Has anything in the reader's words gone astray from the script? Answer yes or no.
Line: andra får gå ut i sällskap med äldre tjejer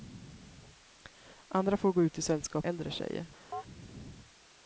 yes